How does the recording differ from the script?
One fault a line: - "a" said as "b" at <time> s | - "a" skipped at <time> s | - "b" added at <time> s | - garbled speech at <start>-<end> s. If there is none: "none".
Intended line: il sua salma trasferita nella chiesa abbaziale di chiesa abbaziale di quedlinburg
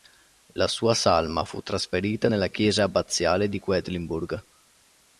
- "il" said as "la" at 0.5 s
- "fu" added at 1.4 s
- "chiesa abbaziale di" skipped at 3.6 s